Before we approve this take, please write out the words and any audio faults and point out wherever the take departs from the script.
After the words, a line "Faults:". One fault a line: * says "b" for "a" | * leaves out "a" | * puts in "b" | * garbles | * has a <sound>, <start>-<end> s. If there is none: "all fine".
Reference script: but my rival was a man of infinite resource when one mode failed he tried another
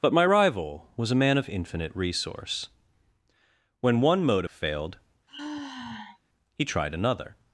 but my rival was a man of infinite resource when one mode failed he tried another
Faults:
* has a sigh, 5.3-6.2 s